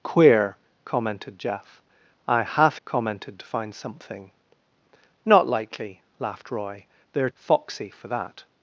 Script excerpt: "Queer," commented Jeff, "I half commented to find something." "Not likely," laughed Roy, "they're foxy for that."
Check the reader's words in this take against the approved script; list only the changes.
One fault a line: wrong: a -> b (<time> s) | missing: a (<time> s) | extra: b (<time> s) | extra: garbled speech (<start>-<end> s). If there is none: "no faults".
no faults